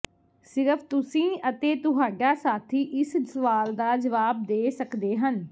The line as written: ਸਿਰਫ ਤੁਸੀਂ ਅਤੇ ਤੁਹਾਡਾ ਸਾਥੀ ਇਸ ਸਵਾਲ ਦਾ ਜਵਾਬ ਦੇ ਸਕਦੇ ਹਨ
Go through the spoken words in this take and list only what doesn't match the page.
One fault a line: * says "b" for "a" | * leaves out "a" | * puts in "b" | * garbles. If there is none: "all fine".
all fine